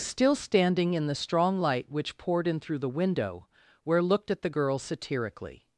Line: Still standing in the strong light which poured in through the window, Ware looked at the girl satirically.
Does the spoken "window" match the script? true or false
true